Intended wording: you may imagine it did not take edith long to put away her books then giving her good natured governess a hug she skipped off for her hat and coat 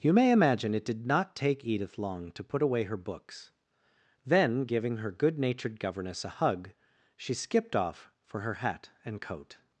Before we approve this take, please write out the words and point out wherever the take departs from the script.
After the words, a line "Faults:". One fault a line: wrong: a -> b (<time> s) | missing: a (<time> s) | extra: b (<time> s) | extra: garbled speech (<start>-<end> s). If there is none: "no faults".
you may imagine it did not take edith long to put away her books then giving her good natured governess a hug she skipped off for her hat and coat
Faults:
no faults